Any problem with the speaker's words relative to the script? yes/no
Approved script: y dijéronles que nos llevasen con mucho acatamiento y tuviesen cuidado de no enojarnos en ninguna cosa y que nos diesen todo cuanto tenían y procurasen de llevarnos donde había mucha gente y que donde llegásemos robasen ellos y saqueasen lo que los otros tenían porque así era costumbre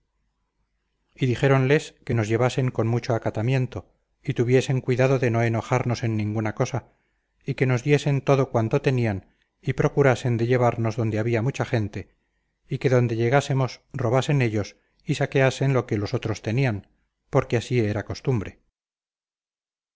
no